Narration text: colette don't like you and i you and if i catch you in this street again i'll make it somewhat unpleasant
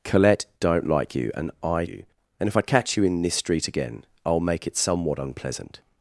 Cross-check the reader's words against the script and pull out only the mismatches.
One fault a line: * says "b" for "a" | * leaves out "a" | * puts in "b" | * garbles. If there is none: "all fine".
all fine